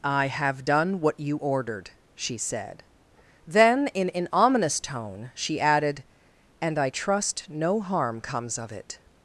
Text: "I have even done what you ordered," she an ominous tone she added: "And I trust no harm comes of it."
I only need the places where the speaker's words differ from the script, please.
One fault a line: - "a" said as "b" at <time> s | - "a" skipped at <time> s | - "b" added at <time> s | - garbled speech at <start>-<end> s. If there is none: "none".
- "even" skipped at 0.7 s
- "said Then in" added at 2.4 s